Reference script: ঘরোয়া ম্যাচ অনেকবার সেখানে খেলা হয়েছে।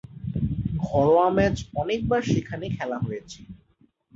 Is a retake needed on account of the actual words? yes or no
no